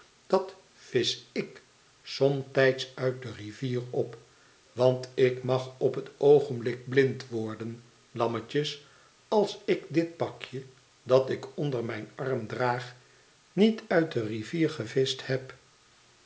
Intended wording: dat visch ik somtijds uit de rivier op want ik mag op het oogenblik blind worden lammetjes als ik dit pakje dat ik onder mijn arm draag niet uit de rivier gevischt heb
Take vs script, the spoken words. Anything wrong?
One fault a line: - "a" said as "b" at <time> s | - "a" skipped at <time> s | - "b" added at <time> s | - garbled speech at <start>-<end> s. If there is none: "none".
none